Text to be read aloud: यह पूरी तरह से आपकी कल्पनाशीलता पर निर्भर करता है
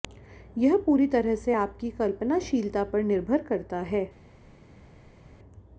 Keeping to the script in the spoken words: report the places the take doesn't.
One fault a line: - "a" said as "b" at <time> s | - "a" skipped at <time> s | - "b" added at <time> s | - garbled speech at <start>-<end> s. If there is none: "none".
none